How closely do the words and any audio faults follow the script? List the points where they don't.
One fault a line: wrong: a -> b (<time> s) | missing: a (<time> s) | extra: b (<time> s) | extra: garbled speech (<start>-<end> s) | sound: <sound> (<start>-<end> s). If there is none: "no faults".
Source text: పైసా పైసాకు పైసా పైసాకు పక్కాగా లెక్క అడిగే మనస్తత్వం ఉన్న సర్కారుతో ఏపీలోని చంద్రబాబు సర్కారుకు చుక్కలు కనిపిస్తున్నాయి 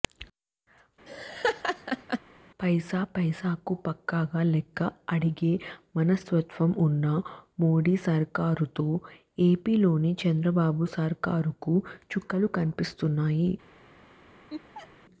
sound: laugh (1.1-2.2 s)
missing: పైసా పైసాకు (3.7 s)
extra: మోడీ (7.6 s)
sound: laugh (14.5-14.9 s)